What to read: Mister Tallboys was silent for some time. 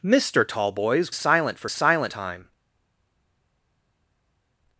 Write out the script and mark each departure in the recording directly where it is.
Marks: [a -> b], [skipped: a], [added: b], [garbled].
Mister Tallboys [skipped: was] silent for [some -> silent] time.